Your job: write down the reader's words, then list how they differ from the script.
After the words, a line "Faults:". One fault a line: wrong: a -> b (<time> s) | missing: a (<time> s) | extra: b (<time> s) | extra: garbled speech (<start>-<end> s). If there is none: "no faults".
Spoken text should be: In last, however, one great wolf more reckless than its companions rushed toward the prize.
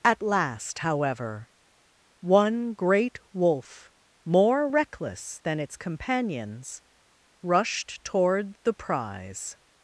At last, however, one great wolf more reckless than its companions rushed toward the prize.
Faults:
wrong: In -> At (0.0 s)